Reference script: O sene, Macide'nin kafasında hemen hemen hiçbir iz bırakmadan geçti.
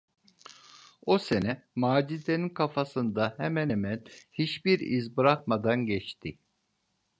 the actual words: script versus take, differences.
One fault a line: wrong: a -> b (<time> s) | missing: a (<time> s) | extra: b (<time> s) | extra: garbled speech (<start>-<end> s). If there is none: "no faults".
no faults